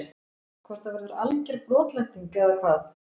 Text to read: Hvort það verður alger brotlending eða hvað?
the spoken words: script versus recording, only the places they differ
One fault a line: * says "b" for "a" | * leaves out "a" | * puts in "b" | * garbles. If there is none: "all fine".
all fine